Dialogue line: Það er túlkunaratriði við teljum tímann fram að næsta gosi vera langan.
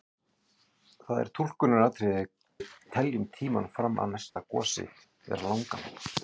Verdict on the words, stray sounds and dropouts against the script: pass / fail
fail